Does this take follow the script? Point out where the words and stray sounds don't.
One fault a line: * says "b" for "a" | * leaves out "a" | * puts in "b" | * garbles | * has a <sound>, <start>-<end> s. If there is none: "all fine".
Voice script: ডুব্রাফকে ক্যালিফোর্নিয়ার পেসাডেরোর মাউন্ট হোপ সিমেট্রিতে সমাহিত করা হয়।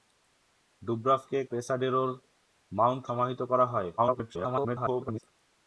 * leaves out "ক্যালিফোর্নিয়ার"
* leaves out "হোপ সিমেট্রিতে"
* garbles